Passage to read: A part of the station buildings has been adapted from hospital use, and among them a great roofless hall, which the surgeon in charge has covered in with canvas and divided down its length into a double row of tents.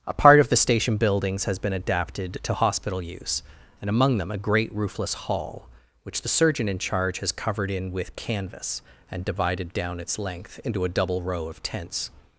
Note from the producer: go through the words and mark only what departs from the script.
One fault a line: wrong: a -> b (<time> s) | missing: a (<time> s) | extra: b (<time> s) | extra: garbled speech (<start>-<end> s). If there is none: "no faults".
wrong: from -> to (2.4 s)